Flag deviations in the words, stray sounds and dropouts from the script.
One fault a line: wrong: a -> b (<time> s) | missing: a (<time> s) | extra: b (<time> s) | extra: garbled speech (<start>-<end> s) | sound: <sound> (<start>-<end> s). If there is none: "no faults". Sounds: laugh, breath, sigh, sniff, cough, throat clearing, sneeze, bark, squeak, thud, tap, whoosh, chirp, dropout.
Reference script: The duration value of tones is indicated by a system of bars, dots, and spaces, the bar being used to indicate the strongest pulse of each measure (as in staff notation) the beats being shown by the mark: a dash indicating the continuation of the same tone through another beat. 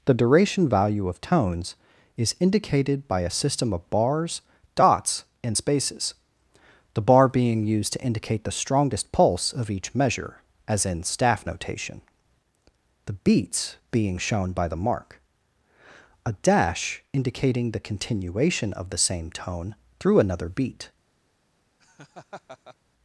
sound: laugh (21.8-22.8 s)